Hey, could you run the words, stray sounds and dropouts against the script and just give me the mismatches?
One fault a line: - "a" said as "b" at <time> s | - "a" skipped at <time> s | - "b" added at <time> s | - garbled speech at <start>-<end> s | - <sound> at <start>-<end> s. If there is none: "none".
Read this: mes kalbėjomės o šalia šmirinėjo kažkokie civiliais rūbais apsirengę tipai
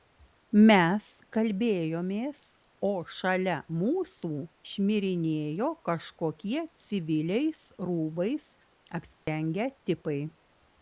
- "mūsų" added at 3.8 s
- dropout at 9.1-9.3 s